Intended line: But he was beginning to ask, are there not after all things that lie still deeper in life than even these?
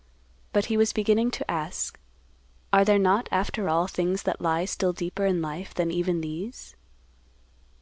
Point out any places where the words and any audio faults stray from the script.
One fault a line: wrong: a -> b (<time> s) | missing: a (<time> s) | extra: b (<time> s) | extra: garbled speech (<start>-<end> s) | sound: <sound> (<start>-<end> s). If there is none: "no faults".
no faults